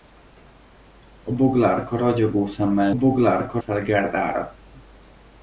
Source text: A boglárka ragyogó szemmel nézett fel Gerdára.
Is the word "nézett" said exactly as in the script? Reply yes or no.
no